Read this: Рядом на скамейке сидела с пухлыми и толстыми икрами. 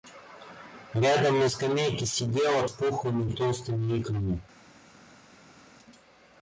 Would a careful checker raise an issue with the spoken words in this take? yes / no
no